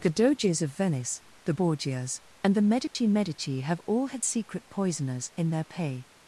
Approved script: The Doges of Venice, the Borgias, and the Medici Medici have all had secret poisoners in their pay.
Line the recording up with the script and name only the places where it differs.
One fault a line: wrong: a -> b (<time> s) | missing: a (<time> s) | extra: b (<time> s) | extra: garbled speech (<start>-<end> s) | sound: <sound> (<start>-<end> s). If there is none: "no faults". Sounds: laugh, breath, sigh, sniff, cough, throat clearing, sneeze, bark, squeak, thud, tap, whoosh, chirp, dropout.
sound: dropout (2.9-3.0 s)